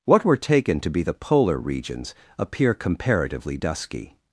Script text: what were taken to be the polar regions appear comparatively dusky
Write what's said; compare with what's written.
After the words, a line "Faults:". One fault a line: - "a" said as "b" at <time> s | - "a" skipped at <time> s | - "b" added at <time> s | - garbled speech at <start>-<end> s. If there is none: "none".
what were taken to be the polar regions appear comparatively dusky
Faults:
none